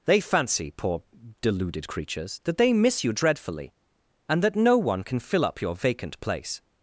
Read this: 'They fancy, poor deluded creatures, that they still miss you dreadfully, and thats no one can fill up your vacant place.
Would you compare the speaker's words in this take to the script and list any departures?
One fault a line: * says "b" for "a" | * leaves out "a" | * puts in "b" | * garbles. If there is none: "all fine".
* leaves out "still"
* says "that" for "thats"